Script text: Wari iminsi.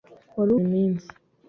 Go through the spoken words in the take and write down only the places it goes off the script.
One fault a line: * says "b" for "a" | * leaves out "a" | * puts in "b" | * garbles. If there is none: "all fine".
all fine